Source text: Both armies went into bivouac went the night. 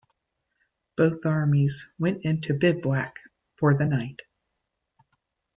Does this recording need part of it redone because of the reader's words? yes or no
yes